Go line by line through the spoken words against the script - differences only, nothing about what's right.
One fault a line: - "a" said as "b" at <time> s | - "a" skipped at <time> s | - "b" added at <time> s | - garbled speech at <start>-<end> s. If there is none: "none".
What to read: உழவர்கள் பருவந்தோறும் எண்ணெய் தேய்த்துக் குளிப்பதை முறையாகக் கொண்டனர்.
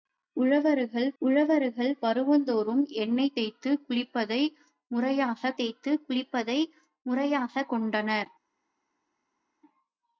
- "உழவர்கள்" added at 1.2 s
- "தேய்த்துக் குளிப்பதை முறையாகக்" added at 5.6 s